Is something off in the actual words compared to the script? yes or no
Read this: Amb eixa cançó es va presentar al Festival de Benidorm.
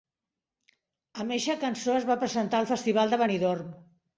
no